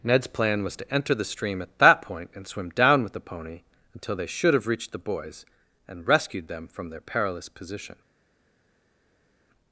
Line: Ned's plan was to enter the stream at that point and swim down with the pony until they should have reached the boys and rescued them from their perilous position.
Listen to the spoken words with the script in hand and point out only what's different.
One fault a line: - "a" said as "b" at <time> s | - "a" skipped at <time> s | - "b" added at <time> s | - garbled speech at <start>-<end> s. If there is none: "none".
none